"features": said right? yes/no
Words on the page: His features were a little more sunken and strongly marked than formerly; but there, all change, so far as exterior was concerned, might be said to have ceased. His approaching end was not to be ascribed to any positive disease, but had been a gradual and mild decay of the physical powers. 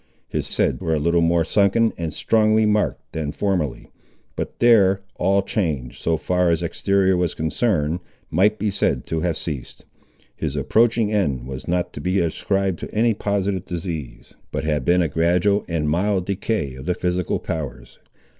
no